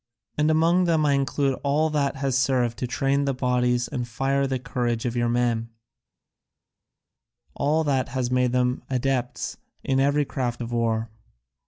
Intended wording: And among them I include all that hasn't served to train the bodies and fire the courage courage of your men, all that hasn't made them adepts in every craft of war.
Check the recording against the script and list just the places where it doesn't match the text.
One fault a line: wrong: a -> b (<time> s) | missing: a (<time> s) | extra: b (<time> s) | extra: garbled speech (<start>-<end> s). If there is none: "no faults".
wrong: hasn't -> has (2.1 s)
missing: courage (5.0 s)
wrong: hasn't -> has (8.1 s)